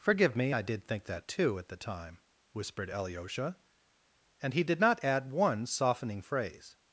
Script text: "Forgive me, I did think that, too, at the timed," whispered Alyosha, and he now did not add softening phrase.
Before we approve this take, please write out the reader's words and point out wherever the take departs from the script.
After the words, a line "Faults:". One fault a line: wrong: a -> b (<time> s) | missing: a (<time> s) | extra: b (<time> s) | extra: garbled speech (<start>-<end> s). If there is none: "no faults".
"Forgive me, I did think that, too, at the time," whispered Alyosha, and he did not add one softening phrase.
Faults:
wrong: timed -> time (1.7 s)
missing: now (4.6 s)
extra: one (5.3 s)